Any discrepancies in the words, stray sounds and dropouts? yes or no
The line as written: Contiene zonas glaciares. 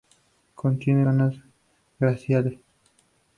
no